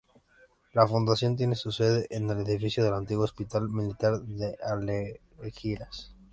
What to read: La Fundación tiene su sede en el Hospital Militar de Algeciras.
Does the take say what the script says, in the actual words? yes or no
no